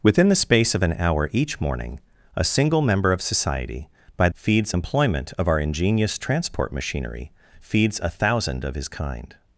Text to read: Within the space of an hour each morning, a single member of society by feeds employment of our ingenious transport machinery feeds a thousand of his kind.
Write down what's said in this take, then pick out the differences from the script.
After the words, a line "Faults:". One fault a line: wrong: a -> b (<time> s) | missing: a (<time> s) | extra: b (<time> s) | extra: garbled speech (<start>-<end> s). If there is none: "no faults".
Within the space of an hour each morning, a single member of society by feeds employment of our ingenious transport machinery feeds a thousand of his kind.
Faults:
no faults